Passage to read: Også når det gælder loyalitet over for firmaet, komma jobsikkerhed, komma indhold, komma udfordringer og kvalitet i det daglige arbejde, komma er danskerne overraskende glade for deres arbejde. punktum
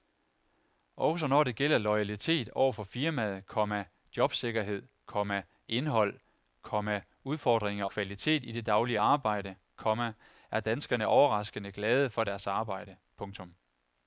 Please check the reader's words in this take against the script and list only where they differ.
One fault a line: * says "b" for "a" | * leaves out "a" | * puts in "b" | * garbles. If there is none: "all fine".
* leaves out "og"